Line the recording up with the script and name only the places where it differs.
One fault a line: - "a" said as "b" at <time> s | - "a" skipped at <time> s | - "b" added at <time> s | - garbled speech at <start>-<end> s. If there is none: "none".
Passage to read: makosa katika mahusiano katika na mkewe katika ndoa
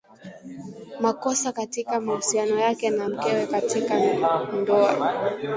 - "katika" said as "yake" at 2.6 s